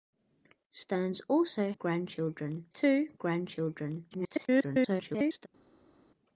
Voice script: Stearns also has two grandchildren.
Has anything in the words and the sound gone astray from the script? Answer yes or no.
yes